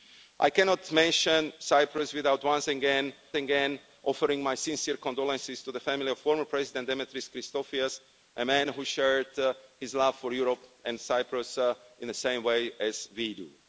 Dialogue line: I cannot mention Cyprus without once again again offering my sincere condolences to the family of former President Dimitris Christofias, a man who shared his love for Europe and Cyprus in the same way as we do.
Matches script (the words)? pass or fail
pass